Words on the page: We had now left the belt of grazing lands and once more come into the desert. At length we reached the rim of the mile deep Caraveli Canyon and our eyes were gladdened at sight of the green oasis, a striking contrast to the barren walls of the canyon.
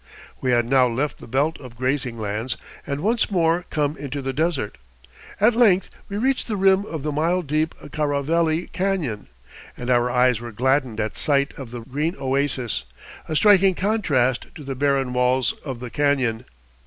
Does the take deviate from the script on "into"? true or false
false